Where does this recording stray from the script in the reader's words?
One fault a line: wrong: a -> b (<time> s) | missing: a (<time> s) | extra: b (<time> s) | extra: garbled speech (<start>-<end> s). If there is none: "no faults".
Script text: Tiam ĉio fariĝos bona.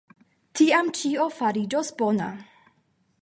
no faults